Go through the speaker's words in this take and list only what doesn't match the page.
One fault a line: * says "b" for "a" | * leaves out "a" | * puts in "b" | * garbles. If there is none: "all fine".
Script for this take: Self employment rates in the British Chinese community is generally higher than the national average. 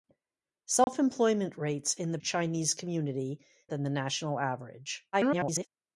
* leaves out "British"
* leaves out "is generally higher"
* garbles